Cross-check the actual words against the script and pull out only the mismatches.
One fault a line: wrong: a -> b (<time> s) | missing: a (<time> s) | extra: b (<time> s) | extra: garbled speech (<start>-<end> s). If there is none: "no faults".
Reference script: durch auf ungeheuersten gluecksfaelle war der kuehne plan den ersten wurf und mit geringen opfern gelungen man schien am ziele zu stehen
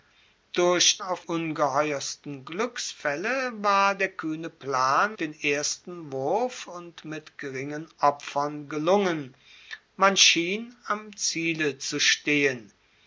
no faults